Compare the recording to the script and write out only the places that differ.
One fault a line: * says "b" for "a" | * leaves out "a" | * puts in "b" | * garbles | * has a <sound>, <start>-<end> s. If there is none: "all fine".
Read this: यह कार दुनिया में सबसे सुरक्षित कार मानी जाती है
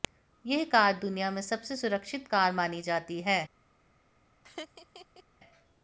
* has a laugh, 4.4-5.2 s